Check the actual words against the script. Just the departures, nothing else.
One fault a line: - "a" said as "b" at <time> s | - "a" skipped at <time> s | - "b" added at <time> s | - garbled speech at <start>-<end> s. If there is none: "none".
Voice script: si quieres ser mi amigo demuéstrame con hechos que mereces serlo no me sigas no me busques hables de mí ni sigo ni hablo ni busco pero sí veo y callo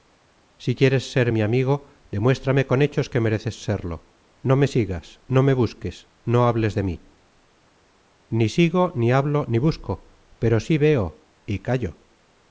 - "no" added at 6.3 s